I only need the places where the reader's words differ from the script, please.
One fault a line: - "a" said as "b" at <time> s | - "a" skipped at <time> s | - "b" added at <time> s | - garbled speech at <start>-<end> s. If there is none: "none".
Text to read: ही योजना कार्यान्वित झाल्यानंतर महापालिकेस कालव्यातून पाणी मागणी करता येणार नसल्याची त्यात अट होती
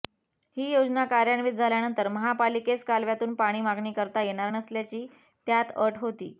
none